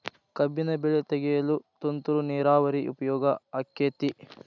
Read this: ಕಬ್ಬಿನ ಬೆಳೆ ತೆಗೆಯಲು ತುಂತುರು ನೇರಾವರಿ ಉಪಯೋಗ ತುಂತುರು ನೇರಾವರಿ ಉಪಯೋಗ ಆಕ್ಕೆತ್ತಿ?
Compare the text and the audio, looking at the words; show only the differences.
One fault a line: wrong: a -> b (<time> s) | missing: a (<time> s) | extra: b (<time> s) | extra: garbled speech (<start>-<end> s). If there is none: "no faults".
missing: ತುಂತುರು ನೇರಾವರಿ ಉಪಯೋಗ (3.2 s)